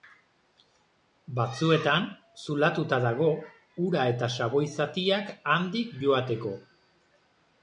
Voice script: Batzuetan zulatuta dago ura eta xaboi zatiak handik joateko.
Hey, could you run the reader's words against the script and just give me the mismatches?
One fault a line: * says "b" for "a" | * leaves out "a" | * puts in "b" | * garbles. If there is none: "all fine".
all fine